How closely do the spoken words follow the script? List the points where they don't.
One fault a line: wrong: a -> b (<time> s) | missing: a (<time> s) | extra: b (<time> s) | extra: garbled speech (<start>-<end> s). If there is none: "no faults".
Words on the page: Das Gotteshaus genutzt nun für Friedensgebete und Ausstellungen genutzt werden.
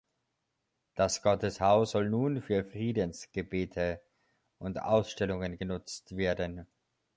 wrong: genutzt -> soll (1.9 s)